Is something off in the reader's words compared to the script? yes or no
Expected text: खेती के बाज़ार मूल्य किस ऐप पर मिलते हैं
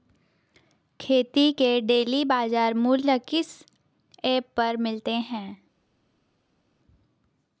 yes